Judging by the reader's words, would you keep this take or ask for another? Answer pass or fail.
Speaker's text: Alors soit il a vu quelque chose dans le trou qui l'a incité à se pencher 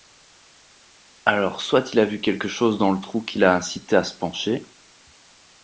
pass